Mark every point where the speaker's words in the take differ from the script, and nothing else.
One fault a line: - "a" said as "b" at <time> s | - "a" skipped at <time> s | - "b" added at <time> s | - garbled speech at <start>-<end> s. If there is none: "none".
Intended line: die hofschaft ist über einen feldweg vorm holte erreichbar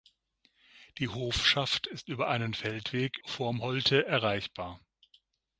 none